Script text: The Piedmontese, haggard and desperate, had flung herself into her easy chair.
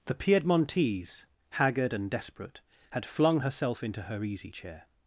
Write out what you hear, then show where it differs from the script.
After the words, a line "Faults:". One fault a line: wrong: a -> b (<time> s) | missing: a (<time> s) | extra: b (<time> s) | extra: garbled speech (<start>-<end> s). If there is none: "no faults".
The Piedmontese, haggard and desperate, had flung herself into her easy chair.
Faults:
no faults